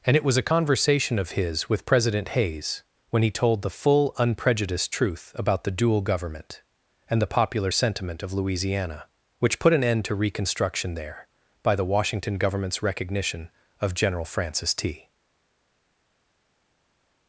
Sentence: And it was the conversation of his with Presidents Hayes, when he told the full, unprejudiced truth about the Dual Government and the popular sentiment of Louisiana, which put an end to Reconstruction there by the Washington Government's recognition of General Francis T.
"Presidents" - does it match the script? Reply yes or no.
no